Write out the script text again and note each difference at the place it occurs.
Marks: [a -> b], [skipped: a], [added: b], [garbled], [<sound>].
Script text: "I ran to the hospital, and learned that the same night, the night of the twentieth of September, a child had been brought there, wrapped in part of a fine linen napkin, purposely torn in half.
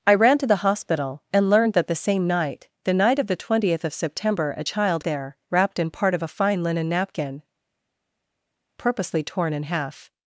"I ran to the hospital, and learned that the same night, the night of the twentieth of September, a child [skipped: had been brought] there, wrapped in part of a fine linen napkin, purposely torn in half.